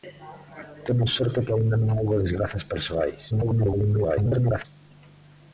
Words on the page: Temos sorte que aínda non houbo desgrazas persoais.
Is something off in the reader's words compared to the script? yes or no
yes